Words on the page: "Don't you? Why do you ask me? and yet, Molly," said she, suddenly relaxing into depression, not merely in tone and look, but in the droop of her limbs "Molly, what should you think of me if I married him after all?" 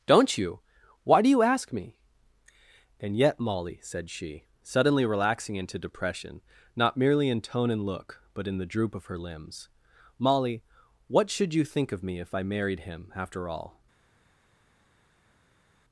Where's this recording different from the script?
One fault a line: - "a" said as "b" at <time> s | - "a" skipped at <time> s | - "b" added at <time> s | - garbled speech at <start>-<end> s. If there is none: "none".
none